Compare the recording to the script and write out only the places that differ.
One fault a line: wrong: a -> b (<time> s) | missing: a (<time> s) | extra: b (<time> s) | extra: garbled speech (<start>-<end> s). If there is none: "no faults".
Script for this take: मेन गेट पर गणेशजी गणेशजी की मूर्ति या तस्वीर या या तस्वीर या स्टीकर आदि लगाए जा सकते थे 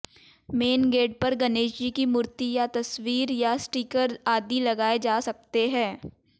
missing: गणेशजी (1.9 s)
missing: या तस्वीर या (3.5 s)
wrong: थे -> हैं (5.7 s)